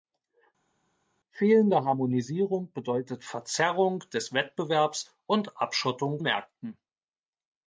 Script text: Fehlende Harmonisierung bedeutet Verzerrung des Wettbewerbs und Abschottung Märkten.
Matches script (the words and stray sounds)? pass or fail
pass